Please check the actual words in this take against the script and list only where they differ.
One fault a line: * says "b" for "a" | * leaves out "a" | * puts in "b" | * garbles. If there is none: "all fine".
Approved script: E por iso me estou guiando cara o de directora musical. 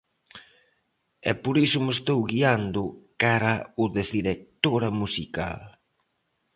all fine